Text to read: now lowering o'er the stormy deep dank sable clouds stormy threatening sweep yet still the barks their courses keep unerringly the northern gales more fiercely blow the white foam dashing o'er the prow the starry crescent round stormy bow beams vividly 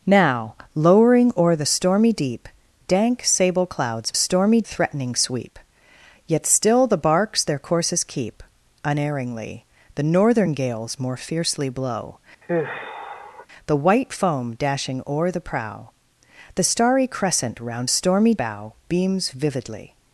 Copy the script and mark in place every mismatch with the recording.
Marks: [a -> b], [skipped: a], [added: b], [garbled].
now lowering o'er the stormy deep dank sable clouds stormy threatening sweep yet still the barks their courses keep unerringly the northern gales more fiercely blow the white foam dashing o'er the prow the starry crescent round stormy bow beams vividly